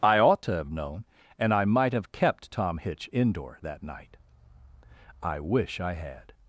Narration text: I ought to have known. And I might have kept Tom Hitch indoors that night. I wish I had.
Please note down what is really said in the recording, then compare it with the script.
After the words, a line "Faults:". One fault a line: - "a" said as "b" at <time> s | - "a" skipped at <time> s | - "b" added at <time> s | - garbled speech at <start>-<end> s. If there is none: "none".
I ought to have known. And I might have kept Tom Hitch indoor that night. I wish I had.
Faults:
- "indoors" said as "indoor" at 3.1 s